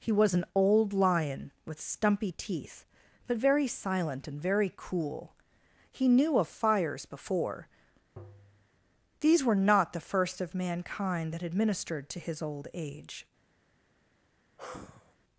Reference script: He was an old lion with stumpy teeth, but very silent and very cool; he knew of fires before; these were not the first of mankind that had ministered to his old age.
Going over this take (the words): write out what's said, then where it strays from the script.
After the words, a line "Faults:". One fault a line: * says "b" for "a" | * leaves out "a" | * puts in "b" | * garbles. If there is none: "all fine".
He was an old lion with stumpy teeth, but very silent and very cool; he knew of fires before; these were not the first of mankind that had ministered to his old age.
Faults:
all fine